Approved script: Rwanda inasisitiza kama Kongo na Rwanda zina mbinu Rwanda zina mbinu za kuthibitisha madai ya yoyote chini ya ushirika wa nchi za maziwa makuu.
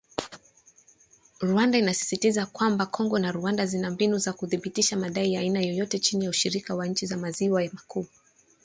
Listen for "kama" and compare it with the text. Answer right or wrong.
wrong